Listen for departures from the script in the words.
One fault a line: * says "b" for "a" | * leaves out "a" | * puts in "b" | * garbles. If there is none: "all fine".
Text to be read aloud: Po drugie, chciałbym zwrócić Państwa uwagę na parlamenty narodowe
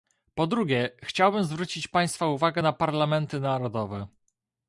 all fine